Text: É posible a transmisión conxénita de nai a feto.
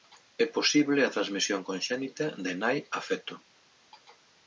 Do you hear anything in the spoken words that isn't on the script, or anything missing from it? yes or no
no